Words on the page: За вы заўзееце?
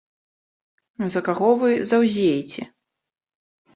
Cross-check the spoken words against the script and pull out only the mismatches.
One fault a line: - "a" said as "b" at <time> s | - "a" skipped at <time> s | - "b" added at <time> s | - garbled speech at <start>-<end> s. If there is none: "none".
- "каго" added at 1.3 s